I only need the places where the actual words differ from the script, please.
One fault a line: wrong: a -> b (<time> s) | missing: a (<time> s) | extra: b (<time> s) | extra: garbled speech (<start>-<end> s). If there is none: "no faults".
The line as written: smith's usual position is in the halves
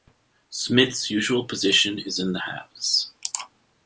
no faults